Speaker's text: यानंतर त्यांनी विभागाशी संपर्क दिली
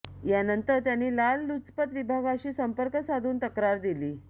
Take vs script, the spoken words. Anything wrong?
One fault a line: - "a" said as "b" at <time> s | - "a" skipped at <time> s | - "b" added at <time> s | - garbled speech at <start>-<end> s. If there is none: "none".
- "लाचलुचपत" added at 1.1 s
- "साधून तक्रार" added at 3.0 s